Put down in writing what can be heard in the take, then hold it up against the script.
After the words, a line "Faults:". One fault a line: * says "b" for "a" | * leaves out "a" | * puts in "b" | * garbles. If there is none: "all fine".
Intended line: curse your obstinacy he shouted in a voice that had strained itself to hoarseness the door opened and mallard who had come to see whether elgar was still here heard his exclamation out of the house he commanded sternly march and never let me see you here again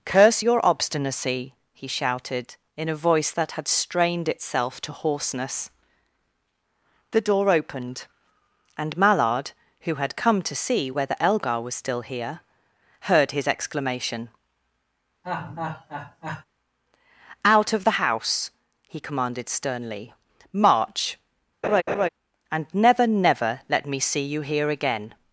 curse your obstinacy he shouted in a voice that had strained itself to hoarseness the door opened and mallard who had come to see whether elgar was still here heard his exclamation out of the house he commanded sternly march and never never let me see you here again
Faults:
* puts in "never"